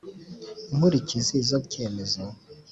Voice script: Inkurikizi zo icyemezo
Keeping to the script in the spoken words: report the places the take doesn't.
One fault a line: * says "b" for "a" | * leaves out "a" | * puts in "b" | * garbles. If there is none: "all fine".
all fine